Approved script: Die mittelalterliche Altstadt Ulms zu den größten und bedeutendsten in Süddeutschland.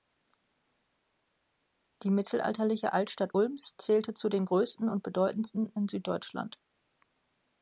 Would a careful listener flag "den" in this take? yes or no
no